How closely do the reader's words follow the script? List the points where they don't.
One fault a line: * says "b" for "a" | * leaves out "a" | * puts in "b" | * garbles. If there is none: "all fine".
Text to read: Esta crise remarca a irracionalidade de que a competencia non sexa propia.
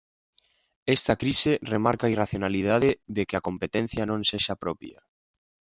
all fine